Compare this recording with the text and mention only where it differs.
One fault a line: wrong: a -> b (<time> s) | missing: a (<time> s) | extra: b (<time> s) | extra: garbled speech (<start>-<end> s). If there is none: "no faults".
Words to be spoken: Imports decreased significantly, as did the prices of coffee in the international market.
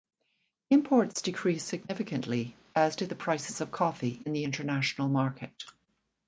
no faults